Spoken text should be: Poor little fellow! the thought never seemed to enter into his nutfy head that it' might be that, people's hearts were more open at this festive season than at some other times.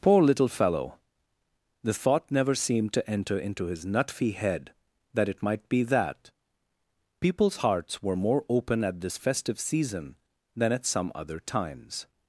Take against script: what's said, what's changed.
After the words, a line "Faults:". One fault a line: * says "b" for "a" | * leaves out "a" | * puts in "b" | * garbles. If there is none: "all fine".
Poor little fellow! the thought never seemed to enter into his nutfy head that it' might be that, people's hearts were more open at this festive season than at some other times.
Faults:
all fine